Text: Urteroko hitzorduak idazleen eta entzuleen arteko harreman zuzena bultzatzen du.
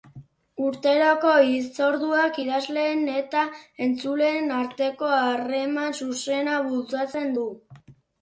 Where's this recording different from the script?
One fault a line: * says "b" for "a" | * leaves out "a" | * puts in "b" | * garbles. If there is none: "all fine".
all fine